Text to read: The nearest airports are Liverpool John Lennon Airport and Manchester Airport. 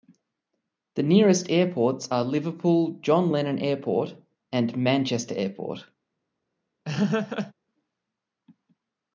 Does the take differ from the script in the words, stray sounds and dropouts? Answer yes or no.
yes